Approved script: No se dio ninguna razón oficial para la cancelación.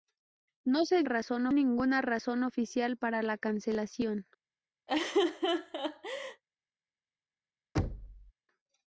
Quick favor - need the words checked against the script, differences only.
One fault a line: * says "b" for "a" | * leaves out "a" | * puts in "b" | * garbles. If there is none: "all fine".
* says "razón" for "dio"